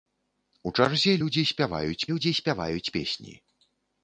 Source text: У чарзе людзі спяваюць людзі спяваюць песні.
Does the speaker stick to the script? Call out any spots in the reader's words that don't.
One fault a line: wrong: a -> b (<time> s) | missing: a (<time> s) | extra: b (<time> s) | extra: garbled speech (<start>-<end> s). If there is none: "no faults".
no faults